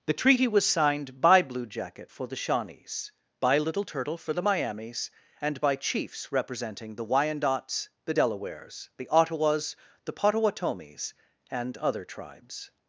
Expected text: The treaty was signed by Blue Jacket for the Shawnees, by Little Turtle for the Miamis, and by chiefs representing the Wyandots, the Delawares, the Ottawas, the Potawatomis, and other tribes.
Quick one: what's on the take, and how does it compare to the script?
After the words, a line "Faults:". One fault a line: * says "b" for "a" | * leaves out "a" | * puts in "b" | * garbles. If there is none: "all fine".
The treaty was signed by Blue Jacket for the Shawnees, by Little Turtle for the Miamis, and by chiefs representing the Wyandots, the Delawares, the Ottawas, the Potawatomis, and other tribes.
Faults:
all fine